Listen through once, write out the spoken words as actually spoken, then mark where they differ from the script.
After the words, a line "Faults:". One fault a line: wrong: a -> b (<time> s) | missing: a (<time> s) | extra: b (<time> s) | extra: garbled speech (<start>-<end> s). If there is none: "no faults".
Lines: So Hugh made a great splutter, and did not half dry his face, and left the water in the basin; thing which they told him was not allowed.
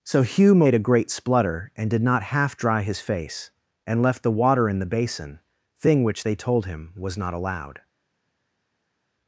So Hugh made a great splutter, and did not half dry his face, and left the water in the basin; thing which they told him was not allowed.
Faults:
no faults